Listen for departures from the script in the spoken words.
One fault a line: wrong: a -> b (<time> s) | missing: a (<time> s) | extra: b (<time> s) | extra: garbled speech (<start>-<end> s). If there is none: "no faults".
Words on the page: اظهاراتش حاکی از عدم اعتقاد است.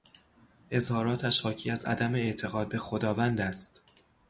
extra: به خداوند (2.7 s)